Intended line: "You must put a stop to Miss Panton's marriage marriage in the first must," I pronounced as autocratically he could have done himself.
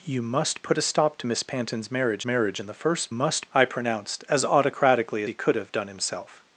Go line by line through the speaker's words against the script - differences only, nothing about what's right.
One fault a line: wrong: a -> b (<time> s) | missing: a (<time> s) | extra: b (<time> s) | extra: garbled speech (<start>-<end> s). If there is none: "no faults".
no faults